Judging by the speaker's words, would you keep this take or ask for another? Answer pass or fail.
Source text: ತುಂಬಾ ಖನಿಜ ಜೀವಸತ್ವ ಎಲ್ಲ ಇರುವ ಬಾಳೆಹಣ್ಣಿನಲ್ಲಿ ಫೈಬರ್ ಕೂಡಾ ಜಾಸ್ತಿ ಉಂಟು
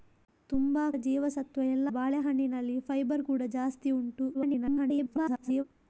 fail